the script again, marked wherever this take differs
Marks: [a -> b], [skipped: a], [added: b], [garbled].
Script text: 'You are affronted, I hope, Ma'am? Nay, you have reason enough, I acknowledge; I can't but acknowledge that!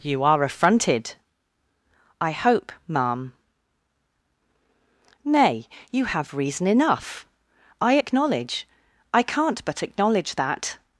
'You are affronted, I hope, Ma'am? Nay, you have reason enough, I acknowledge; I can't but acknowledge that!